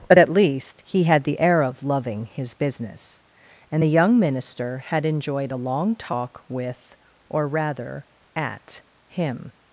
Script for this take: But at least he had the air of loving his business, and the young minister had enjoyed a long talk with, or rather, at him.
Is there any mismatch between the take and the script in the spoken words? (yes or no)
no